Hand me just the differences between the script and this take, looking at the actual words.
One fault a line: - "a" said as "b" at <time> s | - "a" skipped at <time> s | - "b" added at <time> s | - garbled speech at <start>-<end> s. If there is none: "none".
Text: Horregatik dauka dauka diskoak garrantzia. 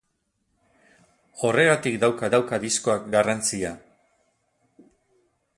none